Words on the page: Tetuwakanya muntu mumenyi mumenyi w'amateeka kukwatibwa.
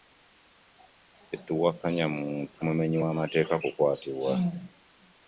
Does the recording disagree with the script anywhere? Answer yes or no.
yes